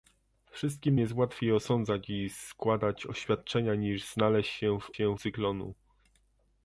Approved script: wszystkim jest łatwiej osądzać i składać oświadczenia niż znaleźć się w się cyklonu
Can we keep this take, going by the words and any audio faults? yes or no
yes